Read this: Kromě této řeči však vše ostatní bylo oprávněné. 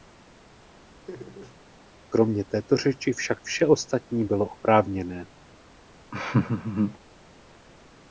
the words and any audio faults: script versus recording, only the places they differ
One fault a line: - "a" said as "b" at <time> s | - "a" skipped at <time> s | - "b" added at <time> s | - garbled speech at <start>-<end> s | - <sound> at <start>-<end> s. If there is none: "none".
- laugh at 1.1-1.6 s
- laugh at 6.1-7.0 s